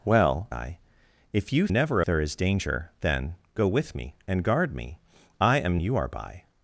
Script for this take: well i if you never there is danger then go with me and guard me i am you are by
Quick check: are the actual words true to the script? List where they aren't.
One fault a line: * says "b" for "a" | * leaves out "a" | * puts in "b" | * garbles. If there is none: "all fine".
all fine